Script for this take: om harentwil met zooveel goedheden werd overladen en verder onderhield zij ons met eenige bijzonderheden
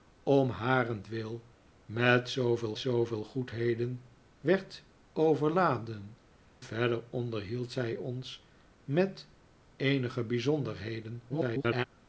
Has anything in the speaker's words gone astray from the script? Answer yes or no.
yes